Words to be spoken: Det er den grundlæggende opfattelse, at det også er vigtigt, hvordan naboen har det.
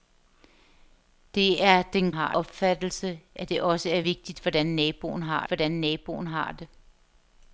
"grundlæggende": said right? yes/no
no